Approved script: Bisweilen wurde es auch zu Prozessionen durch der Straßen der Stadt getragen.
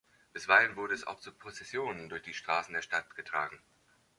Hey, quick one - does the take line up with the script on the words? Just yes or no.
no